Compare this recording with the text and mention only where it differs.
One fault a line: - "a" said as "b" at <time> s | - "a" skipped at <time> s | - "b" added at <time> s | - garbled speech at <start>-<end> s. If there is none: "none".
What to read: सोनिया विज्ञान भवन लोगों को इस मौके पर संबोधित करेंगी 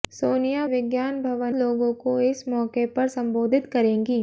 none